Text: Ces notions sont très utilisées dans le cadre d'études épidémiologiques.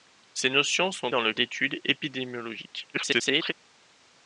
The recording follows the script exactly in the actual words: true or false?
false